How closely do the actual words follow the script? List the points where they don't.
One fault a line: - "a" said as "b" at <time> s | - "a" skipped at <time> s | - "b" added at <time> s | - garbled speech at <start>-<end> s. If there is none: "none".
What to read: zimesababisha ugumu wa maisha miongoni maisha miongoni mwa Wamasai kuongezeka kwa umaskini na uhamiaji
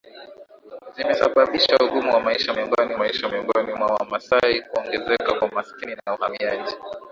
none